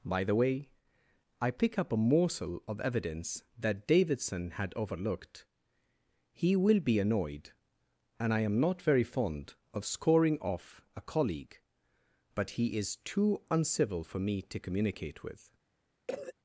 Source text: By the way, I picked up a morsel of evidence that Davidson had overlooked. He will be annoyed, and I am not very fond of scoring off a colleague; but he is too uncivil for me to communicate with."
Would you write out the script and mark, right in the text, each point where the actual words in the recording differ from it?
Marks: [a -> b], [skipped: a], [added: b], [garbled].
By the way, I [picked -> pick] up a morsel of evidence that Davidson had overlooked. He will be annoyed, and I am not very fond of scoring off a colleague; but he is too uncivil for me to communicate with."